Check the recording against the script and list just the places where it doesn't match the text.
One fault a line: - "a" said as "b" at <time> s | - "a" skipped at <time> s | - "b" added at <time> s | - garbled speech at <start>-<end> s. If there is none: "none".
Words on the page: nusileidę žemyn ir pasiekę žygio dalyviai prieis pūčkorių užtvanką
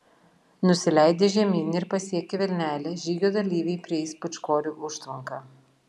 - "vilnelę" added at 2.4 s